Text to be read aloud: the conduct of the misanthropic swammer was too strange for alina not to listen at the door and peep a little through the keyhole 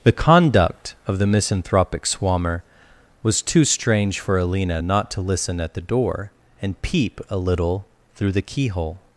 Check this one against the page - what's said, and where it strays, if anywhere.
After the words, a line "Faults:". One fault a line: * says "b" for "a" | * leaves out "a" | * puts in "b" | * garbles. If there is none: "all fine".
the conduct of the misanthropic swammer was too strange for alina not to listen at the door and peep a little through the keyhole
Faults:
all fine